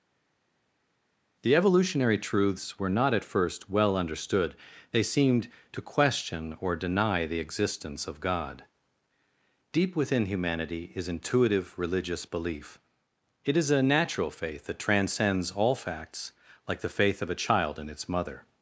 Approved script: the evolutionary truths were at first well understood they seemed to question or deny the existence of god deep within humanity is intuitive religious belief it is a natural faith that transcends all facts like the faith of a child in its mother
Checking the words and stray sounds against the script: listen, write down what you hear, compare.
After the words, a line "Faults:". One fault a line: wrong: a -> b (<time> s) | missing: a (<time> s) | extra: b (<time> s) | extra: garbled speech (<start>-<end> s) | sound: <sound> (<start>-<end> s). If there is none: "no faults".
the evolutionary truths were not at first well understood they seemed to question or deny the existence of god deep within humanity is intuitive religious belief it is a natural faith that transcends all facts like the faith of a child in its mother
Faults:
extra: not (2.9 s)